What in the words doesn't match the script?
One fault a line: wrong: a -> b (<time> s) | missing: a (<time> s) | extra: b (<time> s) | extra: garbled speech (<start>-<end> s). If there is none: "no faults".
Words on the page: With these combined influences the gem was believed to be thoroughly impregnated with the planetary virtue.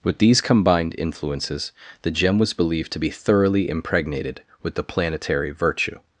no faults